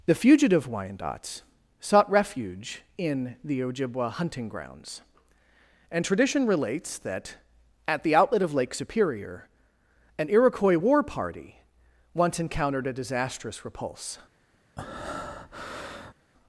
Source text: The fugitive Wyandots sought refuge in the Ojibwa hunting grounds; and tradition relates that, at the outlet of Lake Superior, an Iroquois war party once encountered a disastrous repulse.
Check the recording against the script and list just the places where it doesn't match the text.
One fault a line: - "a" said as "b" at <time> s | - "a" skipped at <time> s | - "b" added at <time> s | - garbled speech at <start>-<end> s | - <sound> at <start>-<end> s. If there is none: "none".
- breath at 14.8-16.1 s